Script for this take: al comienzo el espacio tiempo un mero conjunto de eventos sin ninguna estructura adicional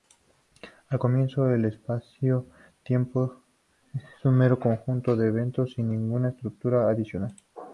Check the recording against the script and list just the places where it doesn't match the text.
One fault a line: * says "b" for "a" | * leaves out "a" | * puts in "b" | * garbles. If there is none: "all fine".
* puts in "es"